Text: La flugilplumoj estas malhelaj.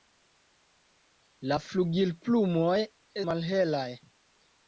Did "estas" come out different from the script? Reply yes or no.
yes